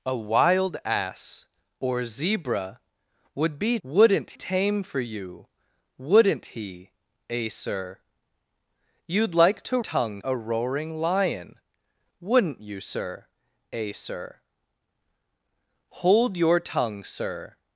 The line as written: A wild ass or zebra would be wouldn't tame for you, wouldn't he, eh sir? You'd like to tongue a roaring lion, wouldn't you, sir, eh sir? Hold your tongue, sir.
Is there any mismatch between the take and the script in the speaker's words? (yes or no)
no